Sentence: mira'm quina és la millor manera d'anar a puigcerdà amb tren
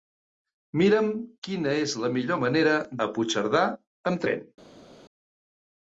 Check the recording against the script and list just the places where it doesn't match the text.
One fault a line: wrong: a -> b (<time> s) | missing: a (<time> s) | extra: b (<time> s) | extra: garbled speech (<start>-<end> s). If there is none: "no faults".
missing: d'anar (2.8 s)